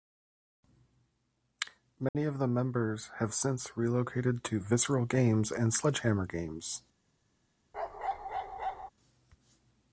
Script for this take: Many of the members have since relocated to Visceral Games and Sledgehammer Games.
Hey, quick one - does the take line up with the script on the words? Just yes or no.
yes